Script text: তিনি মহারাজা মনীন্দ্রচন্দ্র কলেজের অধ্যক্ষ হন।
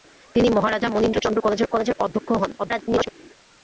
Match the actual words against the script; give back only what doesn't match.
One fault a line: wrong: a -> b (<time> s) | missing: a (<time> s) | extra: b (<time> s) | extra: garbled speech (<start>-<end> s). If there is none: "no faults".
extra: কলেজের (1.7 s)
extra: garbled speech (2.6-3.1 s)